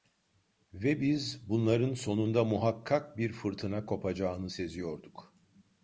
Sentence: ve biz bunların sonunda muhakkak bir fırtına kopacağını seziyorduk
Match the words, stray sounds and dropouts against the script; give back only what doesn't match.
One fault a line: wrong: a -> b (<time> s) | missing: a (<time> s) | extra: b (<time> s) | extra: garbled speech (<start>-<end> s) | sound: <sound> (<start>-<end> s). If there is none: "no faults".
no faults